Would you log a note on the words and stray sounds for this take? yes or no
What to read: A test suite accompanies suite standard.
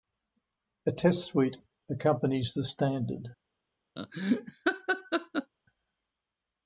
yes